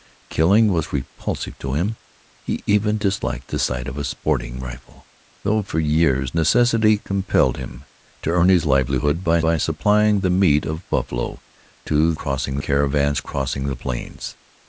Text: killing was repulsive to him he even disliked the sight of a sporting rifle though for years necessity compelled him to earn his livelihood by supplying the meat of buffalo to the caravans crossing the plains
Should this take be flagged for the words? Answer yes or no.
yes